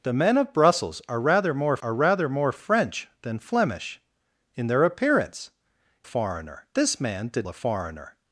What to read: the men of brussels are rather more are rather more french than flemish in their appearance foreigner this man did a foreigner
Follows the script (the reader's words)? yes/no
yes